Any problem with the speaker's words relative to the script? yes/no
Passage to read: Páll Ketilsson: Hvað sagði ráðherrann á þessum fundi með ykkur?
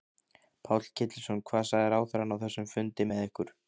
no